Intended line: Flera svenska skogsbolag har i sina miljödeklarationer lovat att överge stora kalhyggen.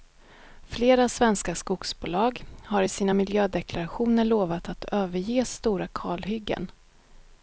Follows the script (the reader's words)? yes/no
yes